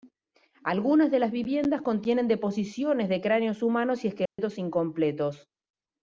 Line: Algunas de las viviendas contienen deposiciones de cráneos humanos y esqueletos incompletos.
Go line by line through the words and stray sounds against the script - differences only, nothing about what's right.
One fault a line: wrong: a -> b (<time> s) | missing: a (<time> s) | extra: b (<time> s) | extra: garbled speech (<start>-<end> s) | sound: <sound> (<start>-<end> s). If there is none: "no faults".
sound: dropout (4.3-4.4 s)